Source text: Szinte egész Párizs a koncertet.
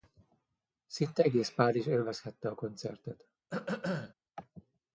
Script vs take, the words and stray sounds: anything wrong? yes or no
yes